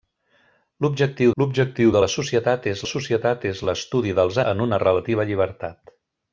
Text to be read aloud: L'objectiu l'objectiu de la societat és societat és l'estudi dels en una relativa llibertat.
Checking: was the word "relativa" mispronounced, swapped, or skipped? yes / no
no